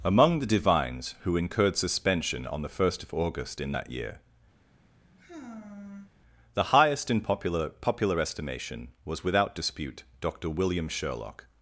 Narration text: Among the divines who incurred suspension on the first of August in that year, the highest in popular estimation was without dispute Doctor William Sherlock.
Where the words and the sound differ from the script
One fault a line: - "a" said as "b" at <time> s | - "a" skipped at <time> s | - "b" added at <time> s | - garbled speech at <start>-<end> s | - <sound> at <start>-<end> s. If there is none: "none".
- sigh at 4.6-6.1 s
- "popular" added at 7.7 s